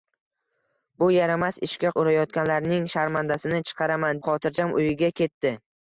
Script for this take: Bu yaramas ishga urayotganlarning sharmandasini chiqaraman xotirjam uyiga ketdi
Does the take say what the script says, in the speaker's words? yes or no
yes